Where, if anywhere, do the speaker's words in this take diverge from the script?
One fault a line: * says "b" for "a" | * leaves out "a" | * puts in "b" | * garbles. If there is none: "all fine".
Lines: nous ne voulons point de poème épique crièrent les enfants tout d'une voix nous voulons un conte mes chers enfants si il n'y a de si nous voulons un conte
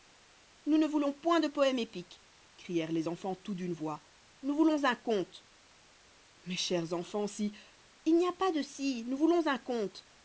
* puts in "pas"